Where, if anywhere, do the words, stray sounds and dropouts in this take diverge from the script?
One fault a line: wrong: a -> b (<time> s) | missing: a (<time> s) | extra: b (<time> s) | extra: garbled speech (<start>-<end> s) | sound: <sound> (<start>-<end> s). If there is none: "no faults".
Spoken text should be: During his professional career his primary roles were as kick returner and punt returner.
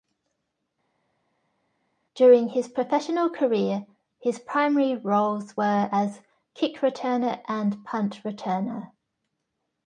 no faults